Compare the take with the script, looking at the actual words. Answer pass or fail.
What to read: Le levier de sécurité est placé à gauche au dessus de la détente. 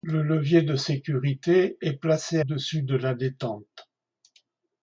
fail